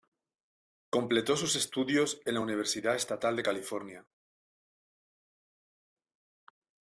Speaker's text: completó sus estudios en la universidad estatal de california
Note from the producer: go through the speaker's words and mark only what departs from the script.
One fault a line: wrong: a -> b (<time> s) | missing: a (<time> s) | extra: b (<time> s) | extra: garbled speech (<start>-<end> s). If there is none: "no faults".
no faults